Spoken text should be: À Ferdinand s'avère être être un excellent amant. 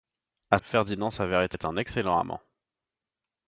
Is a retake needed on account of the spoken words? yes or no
no